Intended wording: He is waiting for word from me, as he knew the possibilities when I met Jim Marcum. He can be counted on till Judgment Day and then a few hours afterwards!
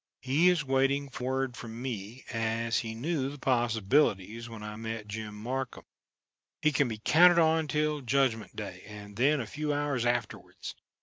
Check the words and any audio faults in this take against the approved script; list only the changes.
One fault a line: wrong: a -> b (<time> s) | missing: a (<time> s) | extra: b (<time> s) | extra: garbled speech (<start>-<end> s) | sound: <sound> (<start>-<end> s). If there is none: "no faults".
no faults